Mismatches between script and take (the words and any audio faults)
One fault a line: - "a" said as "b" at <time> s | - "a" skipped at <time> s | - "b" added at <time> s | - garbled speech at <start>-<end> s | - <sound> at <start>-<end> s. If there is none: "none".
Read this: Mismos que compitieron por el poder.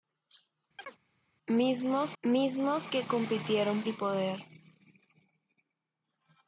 - chirp at 0.8-1.0 s
- "mismos" added at 2.2 s
- "por" skipped at 3.8 s